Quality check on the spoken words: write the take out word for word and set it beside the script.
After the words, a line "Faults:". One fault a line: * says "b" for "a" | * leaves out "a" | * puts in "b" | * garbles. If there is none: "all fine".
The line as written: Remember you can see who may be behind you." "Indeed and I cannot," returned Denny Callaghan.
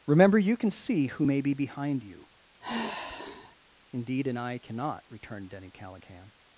Remember you can see who may be behind you." "Indeed and I cannot," returned Denny Callaghan.
Faults:
all fine